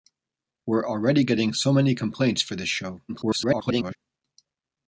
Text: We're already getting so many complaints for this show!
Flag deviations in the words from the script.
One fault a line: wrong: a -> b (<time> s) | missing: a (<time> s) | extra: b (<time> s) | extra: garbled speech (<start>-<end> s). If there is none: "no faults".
extra: garbled speech (3.1-4.0 s)